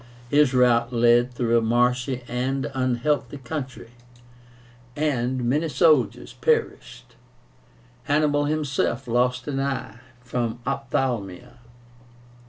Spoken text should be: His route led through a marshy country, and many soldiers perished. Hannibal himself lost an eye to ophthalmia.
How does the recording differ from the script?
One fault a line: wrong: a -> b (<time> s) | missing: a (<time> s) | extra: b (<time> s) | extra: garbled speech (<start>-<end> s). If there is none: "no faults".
extra: and unhealthy (2.3 s)
wrong: to -> from (10.2 s)